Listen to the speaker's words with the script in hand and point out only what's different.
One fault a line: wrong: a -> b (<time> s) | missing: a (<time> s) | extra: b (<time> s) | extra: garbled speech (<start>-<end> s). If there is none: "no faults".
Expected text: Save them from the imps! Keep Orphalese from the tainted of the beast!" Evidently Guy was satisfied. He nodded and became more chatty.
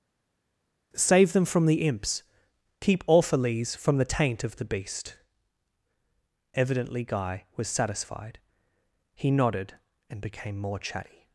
wrong: tainted -> taint (4.0 s)